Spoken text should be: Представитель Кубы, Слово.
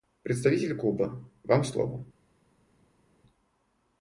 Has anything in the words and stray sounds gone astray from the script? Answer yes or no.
yes